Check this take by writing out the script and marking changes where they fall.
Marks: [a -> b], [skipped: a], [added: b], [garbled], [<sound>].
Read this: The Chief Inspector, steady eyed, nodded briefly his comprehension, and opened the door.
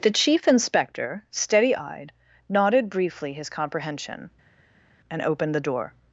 The Chief Inspector, steady eyed, nodded briefly his comprehension, and opened the door.